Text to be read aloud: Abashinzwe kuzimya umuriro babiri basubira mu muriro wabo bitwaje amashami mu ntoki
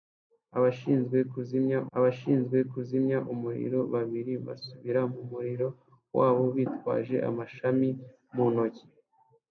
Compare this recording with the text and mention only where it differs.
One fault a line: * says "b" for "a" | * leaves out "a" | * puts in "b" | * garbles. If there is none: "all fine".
* puts in "abashinzwe kuzimya"